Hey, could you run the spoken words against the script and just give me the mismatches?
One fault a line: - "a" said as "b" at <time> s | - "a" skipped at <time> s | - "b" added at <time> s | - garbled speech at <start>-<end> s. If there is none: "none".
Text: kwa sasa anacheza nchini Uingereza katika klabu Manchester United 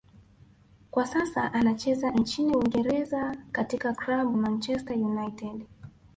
none